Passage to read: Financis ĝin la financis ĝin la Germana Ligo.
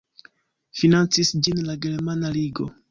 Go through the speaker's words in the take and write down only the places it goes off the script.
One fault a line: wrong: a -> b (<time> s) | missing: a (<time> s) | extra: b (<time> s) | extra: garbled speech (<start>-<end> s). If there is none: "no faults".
missing: financis ĝin la (1.8 s)